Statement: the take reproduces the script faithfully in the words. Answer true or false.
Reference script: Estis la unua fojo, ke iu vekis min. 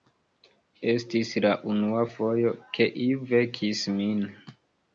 true